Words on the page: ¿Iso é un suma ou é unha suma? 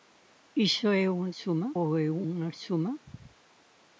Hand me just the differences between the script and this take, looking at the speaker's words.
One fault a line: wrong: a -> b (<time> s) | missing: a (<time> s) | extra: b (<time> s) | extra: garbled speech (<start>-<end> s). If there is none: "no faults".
no faults